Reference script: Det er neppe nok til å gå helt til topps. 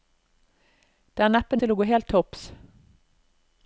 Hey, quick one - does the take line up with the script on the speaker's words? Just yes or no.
no